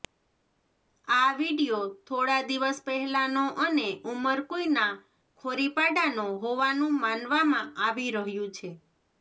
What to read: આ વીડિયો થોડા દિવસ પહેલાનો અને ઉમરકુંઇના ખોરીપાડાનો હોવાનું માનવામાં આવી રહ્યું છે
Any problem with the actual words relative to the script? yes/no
no